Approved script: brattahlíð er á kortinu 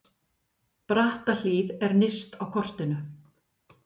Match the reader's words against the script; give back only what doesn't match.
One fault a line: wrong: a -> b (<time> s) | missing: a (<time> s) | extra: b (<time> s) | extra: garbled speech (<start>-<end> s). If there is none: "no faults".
extra: nyrst (2.0 s)